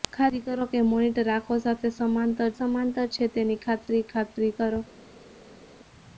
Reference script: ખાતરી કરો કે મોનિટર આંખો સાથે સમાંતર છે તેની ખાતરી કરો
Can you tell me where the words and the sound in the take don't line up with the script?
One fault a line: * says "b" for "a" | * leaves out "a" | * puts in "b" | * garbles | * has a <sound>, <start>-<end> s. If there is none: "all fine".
* puts in "સમાંતર"
* puts in "ખાતરી"